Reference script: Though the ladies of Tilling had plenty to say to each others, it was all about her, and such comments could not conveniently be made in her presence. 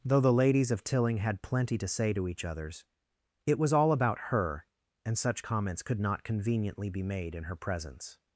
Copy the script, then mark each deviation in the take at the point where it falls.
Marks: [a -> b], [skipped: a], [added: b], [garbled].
Though the ladies of Tilling had plenty to say to each others, it was all about her, and such comments could not conveniently be made in her presence.